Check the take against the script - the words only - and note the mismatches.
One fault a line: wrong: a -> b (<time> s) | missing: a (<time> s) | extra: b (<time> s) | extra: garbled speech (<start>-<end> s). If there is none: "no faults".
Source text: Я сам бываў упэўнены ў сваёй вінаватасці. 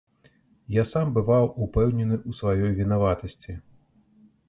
no faults